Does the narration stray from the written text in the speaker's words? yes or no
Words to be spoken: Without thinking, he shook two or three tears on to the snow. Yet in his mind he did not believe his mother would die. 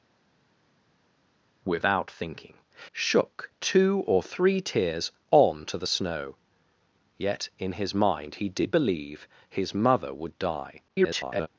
yes